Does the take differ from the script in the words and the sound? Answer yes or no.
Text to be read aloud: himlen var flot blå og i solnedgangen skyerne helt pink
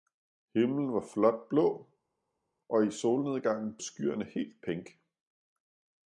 no